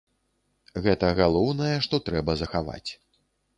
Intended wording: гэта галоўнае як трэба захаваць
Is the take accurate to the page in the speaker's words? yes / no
no